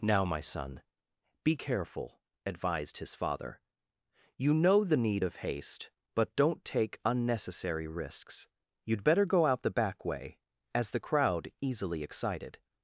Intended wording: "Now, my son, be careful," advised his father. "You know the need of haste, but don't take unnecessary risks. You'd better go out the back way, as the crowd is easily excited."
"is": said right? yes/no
no